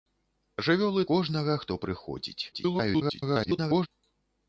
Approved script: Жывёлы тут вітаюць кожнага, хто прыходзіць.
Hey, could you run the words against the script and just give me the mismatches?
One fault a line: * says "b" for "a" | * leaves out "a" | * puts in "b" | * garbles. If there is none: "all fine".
* leaves out "тут вітаюць"
* garbles